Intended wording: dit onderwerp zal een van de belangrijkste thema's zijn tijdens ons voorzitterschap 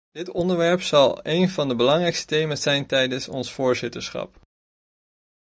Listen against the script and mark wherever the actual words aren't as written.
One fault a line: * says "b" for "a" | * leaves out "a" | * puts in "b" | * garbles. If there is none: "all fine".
all fine